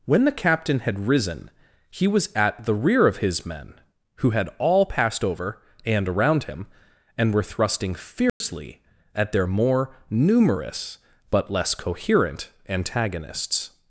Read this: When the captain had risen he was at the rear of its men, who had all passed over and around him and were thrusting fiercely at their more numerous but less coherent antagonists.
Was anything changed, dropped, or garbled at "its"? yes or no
yes